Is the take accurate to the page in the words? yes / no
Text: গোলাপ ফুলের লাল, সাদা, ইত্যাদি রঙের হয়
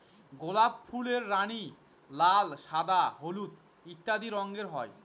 no